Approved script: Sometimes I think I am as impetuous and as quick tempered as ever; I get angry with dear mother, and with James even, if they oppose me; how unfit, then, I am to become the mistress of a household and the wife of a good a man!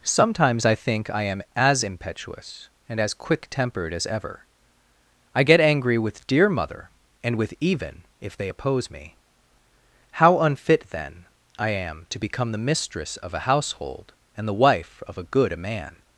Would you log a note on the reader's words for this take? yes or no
yes